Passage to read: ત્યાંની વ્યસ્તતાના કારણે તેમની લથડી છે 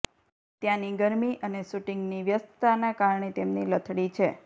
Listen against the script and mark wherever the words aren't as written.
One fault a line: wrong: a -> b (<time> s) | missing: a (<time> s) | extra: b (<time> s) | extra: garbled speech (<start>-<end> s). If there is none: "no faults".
extra: ગરમી અને શૂટિંગની (1.0 s)